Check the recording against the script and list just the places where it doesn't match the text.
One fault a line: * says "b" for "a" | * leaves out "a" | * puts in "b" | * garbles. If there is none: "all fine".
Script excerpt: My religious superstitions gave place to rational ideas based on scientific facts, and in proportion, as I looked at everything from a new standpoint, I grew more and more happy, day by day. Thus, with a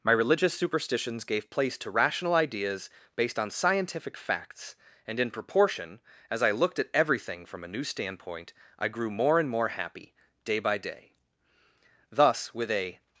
all fine